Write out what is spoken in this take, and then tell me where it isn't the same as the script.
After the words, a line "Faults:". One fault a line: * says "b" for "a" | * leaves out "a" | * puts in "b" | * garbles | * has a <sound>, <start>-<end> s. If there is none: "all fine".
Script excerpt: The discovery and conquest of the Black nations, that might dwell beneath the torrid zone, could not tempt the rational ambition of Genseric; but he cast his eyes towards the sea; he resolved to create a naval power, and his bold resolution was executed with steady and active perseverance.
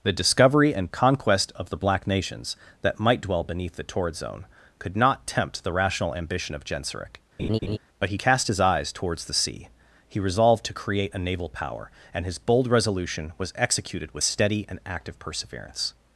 The discovery and conquest of the Black nations, that might dwell beneath the torrid zone, could not tempt the rational ambition of Genseric; but he cast his eyes towards the sea; he resolved to create a naval power, and his bold resolution was executed with steady and active perseverance.
Faults:
* has a laugh, 7.4-7.8 s